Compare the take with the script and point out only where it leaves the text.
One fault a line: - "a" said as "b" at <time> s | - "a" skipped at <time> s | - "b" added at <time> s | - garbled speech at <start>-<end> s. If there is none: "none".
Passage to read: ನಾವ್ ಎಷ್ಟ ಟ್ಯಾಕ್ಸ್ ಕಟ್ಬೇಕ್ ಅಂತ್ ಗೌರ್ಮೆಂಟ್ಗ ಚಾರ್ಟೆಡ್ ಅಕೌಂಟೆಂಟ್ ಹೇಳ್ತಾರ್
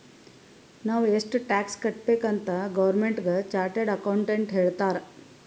none